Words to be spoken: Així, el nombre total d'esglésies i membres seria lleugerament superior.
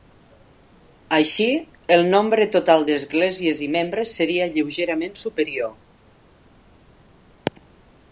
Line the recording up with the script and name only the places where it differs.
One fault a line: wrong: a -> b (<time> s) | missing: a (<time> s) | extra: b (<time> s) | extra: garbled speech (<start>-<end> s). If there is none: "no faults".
no faults